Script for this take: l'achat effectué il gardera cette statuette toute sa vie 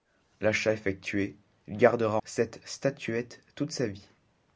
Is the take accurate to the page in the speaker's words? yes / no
yes